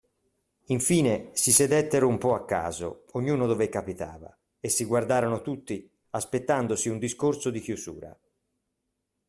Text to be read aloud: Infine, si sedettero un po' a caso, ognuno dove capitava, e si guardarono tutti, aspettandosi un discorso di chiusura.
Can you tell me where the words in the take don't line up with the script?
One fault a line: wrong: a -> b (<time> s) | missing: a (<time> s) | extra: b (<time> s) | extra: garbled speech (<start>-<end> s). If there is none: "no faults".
no faults